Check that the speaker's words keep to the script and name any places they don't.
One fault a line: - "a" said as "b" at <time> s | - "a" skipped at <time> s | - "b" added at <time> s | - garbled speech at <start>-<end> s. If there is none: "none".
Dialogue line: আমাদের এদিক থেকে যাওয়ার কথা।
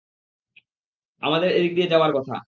- "থেকে" said as "দিয়ে" at 1.8 s